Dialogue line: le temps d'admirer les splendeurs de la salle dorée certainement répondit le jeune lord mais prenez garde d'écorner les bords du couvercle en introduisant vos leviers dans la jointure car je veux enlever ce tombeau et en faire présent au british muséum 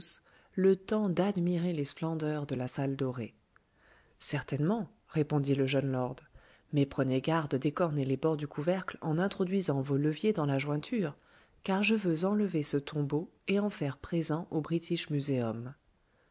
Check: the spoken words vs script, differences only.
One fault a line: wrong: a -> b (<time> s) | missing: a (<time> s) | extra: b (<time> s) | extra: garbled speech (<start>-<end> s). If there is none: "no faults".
no faults